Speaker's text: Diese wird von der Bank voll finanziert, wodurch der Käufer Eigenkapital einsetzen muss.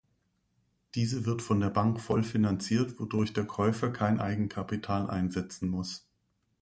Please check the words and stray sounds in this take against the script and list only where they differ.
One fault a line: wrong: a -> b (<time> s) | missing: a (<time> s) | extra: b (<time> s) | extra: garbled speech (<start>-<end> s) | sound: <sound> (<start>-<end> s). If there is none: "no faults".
extra: kein (3.9 s)